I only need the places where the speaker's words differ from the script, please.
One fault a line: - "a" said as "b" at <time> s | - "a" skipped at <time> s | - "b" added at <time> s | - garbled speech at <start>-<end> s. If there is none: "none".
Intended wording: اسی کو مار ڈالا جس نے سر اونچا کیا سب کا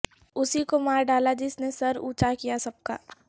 none